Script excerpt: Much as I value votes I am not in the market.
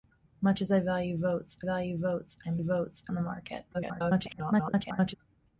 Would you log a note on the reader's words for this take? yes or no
yes